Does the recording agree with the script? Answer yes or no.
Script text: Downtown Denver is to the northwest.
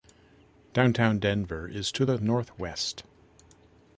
yes